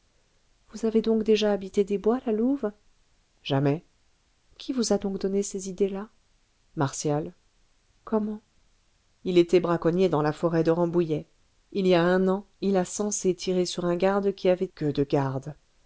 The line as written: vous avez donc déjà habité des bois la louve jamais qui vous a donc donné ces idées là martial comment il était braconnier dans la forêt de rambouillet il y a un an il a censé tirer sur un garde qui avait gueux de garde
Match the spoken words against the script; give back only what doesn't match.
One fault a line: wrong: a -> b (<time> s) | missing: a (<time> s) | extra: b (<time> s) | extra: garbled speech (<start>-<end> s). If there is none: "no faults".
no faults